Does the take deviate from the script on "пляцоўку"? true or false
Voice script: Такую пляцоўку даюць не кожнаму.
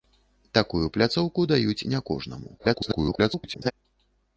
false